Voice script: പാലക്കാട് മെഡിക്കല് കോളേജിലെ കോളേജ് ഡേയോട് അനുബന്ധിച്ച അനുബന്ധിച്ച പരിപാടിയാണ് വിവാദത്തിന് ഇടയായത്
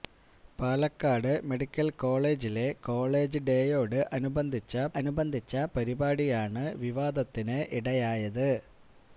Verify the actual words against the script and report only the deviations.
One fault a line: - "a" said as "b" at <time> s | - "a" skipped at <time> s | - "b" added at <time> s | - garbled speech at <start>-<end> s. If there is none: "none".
none